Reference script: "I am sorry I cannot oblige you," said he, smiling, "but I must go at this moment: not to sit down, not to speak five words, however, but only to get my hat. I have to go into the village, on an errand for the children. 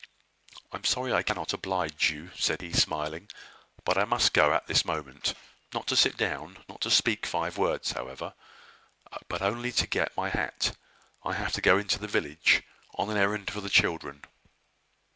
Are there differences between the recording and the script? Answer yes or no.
no